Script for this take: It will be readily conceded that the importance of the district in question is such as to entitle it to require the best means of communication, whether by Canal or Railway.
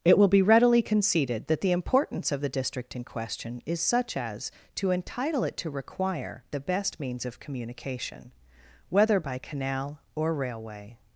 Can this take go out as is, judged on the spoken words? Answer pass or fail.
pass